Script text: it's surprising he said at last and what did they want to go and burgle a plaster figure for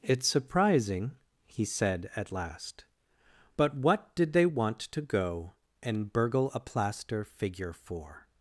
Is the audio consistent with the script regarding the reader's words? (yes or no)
no